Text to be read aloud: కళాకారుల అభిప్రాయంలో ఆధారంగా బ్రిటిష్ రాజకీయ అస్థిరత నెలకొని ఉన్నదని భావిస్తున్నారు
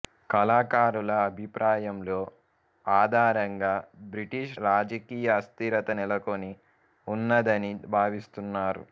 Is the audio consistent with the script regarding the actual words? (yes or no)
yes